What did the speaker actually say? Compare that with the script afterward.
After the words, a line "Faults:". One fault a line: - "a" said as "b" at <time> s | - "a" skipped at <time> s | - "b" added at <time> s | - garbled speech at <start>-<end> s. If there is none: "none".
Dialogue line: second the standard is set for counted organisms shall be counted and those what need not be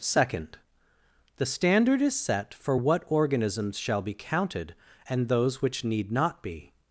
second the standard is set for what organisms shall be counted and those which need not be
Faults:
- "counted" said as "what" at 2.7 s
- "what" said as "which" at 5.6 s